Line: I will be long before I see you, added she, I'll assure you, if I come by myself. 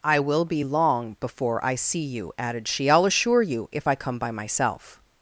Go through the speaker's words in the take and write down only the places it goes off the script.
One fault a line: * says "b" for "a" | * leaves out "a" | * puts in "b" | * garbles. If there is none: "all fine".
all fine